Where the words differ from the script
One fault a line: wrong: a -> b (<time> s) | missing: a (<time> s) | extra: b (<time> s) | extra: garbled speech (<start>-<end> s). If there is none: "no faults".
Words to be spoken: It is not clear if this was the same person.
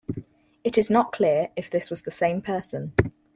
no faults